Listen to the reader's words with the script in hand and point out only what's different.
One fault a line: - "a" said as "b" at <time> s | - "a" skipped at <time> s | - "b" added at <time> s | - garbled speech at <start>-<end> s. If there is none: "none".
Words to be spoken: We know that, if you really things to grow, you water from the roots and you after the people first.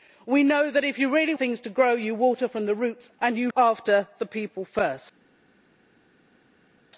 none